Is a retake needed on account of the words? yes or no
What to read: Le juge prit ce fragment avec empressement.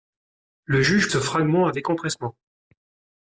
yes